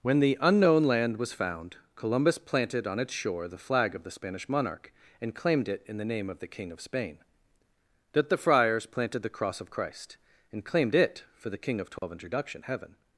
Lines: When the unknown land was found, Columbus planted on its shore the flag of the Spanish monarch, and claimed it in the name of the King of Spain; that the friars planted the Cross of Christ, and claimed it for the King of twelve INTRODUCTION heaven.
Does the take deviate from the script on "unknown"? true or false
false